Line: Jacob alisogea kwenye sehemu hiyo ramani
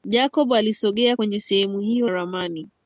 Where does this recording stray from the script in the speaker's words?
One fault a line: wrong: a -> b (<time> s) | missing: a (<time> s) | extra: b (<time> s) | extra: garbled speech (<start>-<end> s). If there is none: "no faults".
no faults